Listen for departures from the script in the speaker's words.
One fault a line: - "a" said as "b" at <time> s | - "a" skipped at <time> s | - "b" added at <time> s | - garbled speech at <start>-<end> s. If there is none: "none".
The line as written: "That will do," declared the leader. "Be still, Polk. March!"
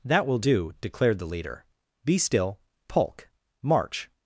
none